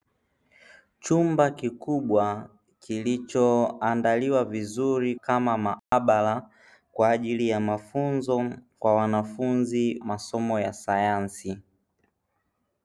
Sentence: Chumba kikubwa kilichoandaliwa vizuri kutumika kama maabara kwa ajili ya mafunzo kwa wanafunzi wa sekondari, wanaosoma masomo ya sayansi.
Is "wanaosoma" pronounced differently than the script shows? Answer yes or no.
yes